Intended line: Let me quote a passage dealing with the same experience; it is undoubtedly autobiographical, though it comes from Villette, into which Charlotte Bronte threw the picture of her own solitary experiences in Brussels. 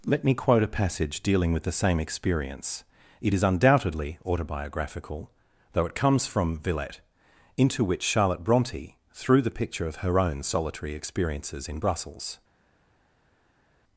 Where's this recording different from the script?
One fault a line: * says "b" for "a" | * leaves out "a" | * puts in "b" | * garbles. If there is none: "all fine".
all fine